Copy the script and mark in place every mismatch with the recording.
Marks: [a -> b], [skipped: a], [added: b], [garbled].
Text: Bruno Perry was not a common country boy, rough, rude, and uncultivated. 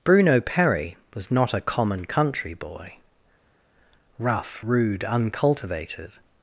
Bruno Perry was not a common country boy, rough, rude, [skipped: and] uncultivated.